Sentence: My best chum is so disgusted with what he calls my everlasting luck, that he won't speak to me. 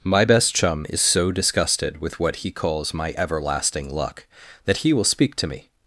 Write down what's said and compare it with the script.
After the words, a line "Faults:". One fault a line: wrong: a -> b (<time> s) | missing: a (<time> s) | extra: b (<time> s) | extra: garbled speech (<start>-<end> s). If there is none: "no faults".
My best chum is so disgusted with what he calls my everlasting luck, that he will speak to me.
Faults:
wrong: won't -> will (4.9 s)